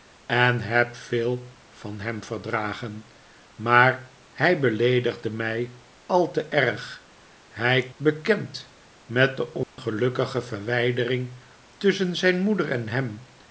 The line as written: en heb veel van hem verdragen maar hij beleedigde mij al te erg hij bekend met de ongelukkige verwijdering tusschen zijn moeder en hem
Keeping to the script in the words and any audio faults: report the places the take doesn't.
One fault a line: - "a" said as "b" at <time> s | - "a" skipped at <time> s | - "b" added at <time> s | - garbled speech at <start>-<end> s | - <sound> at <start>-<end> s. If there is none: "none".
- dropout at 9.6-9.8 s